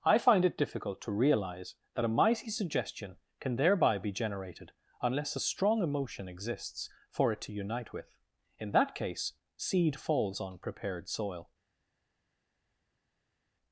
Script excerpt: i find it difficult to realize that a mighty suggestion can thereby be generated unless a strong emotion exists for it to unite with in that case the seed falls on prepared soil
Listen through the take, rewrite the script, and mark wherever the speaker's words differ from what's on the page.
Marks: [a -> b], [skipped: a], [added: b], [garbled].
i find it difficult to realize that a mighty suggestion can thereby be generated unless a strong emotion exists for it to unite with in that case [skipped: the] seed falls on prepared soil